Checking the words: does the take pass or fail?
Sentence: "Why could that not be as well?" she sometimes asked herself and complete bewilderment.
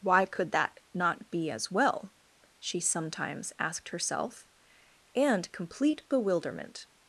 pass